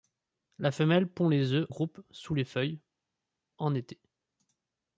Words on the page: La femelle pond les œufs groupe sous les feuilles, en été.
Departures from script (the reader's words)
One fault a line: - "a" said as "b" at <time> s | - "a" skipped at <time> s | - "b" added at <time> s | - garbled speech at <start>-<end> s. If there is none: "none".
none